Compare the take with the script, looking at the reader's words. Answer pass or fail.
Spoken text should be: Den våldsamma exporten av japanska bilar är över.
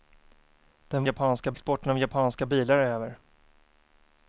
fail